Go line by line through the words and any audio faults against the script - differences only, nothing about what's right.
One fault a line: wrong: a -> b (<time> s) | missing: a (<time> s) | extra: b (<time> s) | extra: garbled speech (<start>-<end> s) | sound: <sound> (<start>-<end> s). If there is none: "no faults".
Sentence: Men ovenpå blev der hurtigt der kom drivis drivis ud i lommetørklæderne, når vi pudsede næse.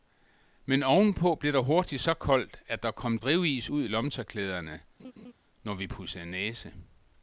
extra: så koldt at (2.0 s)
missing: drivis (3.7 s)
sound: laugh (5.0-5.3 s)